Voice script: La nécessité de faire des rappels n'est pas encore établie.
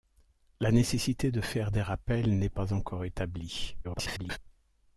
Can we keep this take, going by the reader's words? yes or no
no